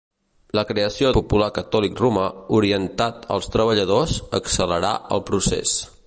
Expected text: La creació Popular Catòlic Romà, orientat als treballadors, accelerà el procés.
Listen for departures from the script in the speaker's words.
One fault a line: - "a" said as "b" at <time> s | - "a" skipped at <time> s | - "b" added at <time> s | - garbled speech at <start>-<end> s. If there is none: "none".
none